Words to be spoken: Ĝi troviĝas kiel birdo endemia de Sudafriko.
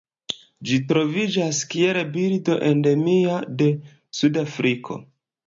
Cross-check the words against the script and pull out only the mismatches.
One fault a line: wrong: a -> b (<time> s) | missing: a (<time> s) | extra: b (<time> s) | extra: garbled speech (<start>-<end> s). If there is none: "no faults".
no faults